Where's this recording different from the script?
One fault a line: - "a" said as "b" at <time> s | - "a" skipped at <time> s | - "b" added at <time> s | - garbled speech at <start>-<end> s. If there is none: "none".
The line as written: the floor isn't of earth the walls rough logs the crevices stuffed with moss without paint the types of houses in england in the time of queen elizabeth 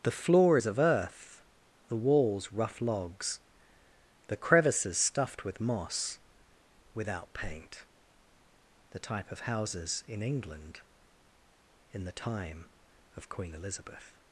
- "isn't" said as "is" at 0.5 s
- "types" said as "type" at 9.0 s